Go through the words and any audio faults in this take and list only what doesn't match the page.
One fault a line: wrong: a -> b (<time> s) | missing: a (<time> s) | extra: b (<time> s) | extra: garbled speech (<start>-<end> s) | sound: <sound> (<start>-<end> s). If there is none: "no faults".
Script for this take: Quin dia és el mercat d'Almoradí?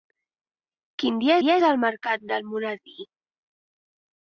extra: dia (1.4 s)